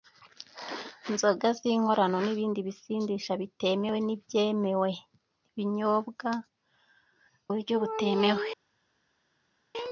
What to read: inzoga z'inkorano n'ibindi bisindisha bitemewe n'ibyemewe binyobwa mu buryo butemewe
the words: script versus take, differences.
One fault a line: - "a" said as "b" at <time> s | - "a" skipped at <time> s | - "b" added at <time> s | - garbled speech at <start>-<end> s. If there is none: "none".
- "mu" skipped at 6.3 s